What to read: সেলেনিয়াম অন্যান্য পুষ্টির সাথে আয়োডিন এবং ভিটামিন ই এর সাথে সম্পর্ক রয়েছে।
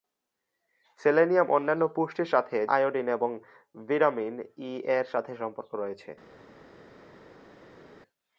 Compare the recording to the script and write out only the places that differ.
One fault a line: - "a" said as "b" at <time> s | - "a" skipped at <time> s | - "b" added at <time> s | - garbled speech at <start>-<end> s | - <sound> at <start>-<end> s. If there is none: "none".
none